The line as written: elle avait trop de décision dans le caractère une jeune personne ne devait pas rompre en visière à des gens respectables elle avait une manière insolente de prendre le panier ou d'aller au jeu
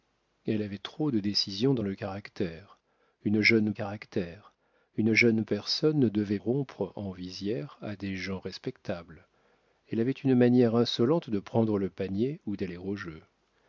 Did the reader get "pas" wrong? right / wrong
wrong